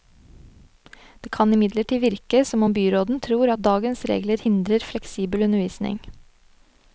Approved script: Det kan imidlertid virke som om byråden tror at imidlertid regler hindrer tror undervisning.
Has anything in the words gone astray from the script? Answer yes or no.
yes